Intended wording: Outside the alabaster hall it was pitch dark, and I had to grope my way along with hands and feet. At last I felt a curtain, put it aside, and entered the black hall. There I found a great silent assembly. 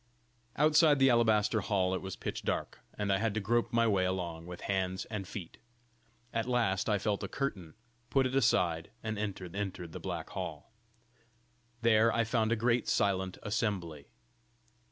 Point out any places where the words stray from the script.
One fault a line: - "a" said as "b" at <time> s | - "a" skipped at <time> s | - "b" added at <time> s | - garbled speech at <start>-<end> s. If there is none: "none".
- "entered" added at 9.6 s